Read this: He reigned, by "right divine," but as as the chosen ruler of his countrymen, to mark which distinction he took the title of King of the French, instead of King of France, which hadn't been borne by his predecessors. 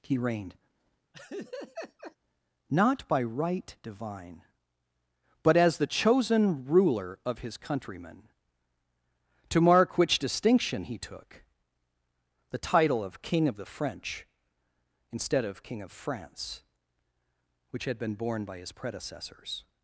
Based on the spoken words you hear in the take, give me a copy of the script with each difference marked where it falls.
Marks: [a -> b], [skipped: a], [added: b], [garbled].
He reigned, [added: not] by "right divine," but as [skipped: as] the chosen ruler of his countrymen, to mark which distinction he took the title of King of the French, instead of King of France, which [hadn't -> had] been borne by his predecessors.